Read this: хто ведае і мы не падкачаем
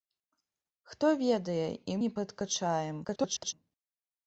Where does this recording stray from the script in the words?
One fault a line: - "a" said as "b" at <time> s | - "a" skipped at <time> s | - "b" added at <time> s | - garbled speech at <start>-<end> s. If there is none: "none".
- "мы" skipped at 2.0 s
- garbled speech at 3.0-3.5 s